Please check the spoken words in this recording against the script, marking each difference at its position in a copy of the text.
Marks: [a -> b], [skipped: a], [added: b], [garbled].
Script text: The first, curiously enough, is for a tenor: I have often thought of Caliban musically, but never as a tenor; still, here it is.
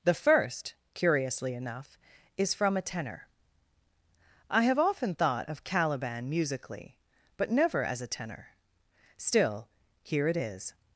The first, curiously enough, is [for -> from] a tenor: I have often thought of Caliban musically, but never as a tenor; still, here it is.